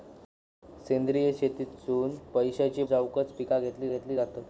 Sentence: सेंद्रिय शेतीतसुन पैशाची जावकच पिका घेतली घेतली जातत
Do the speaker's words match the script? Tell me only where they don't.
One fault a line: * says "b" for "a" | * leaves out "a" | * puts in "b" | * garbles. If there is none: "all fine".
all fine